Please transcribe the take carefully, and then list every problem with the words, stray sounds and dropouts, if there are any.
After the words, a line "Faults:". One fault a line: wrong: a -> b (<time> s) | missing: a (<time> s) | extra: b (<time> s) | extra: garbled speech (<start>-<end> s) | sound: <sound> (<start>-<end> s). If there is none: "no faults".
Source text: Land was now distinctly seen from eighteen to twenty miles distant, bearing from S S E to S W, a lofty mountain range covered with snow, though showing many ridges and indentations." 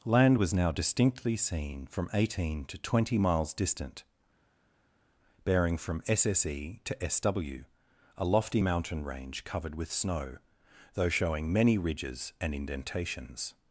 Land was now distinctly seen from eighteen to twenty miles distant, bearing from S S E to S W, a lofty mountain range covered with snow, though showing many ridges and indentations."
Faults:
no faults